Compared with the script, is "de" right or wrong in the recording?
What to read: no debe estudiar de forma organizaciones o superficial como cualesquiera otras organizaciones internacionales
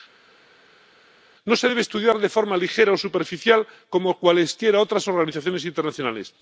right